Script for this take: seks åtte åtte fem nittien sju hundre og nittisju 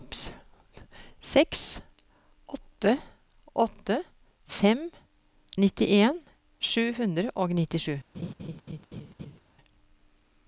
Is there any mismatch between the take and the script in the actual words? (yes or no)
no